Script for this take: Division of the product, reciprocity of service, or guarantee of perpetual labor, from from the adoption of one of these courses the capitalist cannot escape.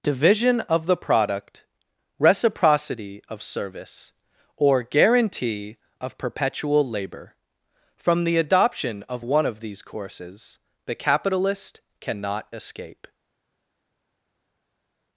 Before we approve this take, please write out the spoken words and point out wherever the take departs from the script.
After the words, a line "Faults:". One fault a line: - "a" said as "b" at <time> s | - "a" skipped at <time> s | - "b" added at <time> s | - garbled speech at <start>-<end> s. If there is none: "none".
Division of the product, reciprocity of service, or guarantee of perpetual labor, from the adoption of one of these courses the capitalist cannot escape.
Faults:
- "from" skipped at 8.2 s